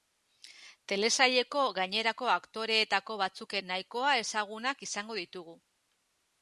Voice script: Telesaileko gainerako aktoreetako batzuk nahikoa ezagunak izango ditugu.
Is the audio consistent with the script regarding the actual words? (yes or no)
yes